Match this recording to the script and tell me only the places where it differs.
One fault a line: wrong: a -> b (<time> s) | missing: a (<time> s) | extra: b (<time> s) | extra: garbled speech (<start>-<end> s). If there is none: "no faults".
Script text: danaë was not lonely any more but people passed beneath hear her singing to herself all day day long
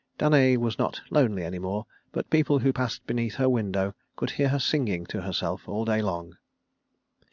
extra: who (2.6 s)
extra: her window could (3.3 s)
missing: day (6.0 s)